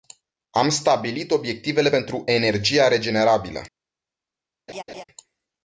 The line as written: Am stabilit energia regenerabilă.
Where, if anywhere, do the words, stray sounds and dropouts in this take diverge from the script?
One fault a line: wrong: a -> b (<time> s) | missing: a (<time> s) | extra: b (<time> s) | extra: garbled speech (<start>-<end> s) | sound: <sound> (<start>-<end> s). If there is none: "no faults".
extra: obiectivele pentru (1.3 s)
sound: laugh (4.7-5.0 s)